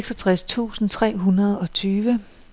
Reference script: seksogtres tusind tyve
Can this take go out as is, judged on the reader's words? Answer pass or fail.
fail